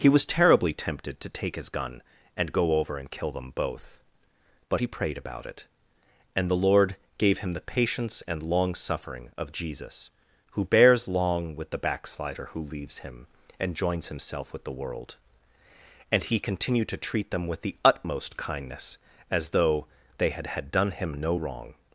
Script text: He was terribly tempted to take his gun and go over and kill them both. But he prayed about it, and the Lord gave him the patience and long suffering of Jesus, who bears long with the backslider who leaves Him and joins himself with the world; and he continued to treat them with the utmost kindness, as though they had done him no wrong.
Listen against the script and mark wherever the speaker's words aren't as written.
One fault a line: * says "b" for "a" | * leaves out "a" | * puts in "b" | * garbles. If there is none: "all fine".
* puts in "had"